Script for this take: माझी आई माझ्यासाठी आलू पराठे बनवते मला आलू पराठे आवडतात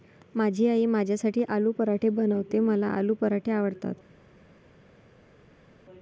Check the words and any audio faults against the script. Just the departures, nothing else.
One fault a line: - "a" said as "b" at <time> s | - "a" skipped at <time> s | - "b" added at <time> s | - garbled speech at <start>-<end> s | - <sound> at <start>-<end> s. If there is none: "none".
none